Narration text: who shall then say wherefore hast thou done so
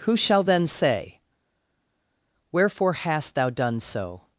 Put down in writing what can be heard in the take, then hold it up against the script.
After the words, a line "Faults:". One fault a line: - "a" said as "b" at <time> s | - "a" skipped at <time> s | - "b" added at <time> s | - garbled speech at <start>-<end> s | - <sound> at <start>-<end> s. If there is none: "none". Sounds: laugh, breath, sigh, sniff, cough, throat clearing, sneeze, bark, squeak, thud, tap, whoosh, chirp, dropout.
who shall then say wherefore hast thou done so
Faults:
none